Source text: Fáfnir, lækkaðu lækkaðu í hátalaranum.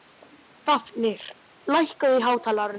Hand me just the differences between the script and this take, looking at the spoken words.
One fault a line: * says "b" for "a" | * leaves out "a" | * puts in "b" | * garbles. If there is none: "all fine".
* leaves out "lækkaðu"